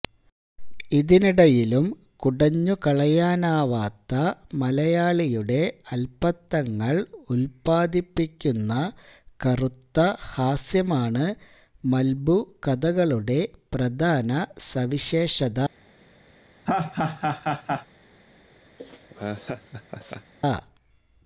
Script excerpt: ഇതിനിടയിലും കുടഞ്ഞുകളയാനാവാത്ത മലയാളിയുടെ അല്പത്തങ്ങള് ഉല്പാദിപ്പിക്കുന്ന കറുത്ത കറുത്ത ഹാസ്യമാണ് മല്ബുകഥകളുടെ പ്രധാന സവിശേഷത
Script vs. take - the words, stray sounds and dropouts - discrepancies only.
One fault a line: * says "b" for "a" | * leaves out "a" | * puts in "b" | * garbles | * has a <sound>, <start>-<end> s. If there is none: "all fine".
* leaves out "കറുത്ത"
* has a laugh, 16.6-17.9 s
* has a laugh, 18.8-20.3 s